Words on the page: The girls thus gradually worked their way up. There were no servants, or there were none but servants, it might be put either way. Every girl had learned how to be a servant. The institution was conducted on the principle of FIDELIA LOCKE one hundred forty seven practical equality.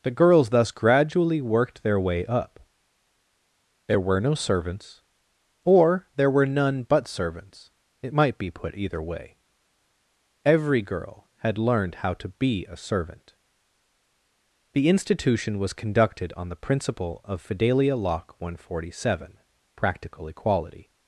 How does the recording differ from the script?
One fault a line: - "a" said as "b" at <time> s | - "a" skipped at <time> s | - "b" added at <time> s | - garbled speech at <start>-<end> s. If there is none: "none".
none